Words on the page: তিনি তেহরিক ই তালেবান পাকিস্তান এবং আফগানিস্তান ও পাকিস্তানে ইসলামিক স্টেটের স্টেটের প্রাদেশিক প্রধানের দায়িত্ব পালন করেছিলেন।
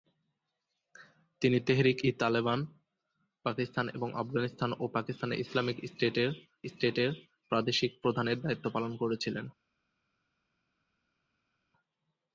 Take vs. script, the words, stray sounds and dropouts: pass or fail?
pass